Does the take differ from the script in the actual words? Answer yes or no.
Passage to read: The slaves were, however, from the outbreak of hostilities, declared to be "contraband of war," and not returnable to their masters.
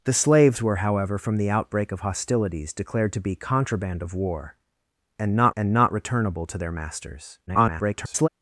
yes